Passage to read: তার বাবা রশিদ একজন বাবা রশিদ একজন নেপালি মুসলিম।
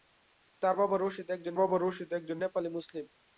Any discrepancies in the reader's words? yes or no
no